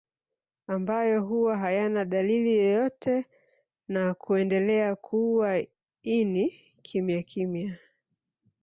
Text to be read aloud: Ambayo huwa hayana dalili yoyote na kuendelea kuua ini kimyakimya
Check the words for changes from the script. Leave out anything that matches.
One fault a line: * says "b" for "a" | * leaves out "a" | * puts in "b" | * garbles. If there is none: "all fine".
all fine